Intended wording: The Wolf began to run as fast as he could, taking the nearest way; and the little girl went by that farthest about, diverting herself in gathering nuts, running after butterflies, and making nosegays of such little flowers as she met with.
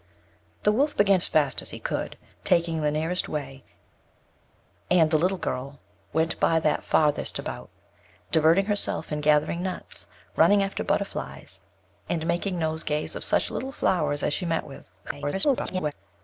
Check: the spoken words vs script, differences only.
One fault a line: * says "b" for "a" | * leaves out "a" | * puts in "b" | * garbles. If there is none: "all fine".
* leaves out "to run"
* garbles